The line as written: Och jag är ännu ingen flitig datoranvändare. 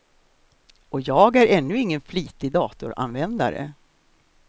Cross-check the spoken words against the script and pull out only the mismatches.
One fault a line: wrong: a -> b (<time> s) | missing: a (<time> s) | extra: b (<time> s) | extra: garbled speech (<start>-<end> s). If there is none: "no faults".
no faults